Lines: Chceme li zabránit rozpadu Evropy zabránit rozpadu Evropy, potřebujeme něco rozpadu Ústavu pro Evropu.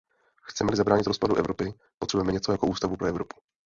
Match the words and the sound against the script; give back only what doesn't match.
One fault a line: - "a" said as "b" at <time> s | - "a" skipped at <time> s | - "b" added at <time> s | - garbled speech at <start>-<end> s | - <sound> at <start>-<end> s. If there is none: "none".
- "zabránit rozpadu Evropy" skipped at 1.7 s
- "rozpadu" said as "jako" at 2.5 s